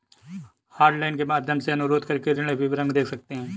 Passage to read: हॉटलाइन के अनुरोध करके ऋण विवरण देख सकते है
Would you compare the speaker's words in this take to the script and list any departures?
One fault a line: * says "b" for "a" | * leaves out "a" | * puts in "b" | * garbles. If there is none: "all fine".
* puts in "माध्यम से"